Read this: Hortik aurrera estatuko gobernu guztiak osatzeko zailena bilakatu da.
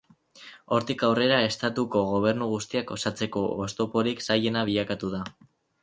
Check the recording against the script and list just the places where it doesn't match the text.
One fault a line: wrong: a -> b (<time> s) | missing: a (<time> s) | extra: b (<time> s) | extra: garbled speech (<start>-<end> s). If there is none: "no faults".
extra: oztoporik (3.7 s)